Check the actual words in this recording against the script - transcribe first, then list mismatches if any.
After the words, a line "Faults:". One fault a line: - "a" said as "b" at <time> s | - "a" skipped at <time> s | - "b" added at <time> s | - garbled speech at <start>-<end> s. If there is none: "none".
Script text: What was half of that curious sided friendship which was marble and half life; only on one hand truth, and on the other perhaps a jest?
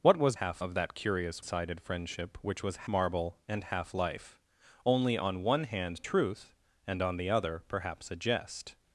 What was half of that curious sided friendship which was marble and half life; only on one hand truth, and on the other perhaps a jest?
Faults:
none